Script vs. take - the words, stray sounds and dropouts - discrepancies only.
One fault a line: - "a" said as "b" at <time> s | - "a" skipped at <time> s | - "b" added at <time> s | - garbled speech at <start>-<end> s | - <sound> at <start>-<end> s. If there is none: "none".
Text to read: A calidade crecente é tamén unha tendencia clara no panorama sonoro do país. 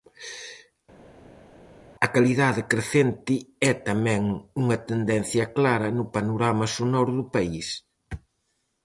none